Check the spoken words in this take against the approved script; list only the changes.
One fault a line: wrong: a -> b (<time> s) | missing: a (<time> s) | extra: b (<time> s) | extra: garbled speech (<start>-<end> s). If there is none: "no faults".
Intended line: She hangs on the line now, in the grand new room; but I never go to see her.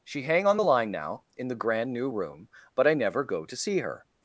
wrong: hangs -> hang (0.2 s)